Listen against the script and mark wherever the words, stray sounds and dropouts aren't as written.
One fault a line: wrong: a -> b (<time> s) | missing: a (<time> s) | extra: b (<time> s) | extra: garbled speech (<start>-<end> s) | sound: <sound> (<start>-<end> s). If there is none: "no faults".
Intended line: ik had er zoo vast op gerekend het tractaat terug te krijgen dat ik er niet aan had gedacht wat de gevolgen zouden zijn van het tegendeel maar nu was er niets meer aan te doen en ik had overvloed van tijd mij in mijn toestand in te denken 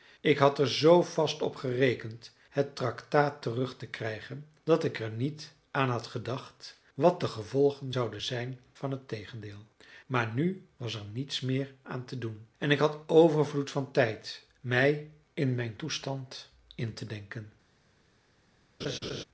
sound: laugh (18.8-19.2 s)